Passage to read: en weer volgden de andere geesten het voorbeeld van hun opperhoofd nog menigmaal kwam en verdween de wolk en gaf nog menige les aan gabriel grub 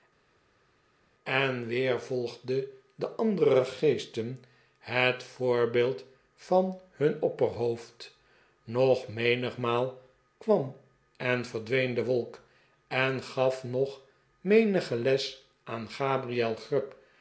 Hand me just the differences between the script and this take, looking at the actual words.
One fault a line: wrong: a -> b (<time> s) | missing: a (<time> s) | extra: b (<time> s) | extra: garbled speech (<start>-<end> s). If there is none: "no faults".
no faults